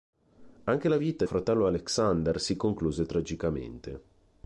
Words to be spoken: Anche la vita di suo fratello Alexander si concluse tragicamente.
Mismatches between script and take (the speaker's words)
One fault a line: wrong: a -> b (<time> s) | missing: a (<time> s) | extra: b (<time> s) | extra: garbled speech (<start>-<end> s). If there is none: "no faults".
missing: di suo (1.2 s)